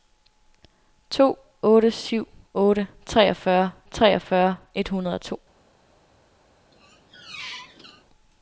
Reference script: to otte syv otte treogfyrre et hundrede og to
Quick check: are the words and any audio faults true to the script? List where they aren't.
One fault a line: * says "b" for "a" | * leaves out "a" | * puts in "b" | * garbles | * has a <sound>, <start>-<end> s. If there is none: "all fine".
* puts in "treogfyrre"
* has a squeak, 6.7-8.0 s